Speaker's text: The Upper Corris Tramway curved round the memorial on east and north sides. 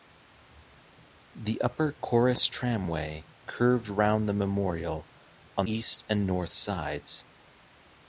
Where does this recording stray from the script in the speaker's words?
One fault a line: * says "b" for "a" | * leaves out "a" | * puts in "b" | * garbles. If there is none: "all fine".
all fine